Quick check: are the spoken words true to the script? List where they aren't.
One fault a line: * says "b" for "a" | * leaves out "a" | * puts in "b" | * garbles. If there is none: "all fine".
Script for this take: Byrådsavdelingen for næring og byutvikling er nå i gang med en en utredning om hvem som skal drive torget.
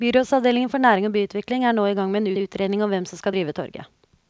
all fine